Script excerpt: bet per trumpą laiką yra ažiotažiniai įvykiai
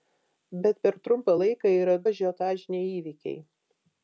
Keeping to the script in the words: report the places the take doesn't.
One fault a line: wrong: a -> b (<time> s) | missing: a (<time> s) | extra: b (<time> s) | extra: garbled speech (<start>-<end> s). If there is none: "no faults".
no faults